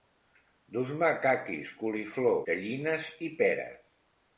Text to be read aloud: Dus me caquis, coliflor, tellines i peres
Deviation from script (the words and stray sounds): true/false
false